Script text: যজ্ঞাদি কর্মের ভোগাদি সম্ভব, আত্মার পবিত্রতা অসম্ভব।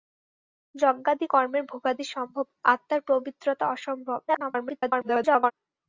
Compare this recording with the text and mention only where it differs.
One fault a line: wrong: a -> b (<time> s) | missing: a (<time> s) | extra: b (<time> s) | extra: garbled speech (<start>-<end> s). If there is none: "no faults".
extra: garbled speech (4.3-5.5 s)